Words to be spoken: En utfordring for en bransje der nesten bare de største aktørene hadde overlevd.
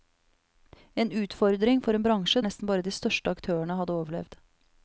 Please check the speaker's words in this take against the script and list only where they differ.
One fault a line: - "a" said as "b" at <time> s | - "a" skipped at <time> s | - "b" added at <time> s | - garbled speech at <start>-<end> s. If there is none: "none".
- "der" skipped at 2.4 s